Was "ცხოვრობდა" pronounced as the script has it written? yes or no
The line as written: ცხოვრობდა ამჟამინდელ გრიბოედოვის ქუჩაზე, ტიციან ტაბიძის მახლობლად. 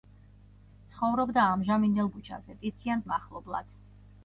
yes